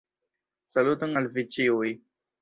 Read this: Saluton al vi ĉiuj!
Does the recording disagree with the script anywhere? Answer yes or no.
no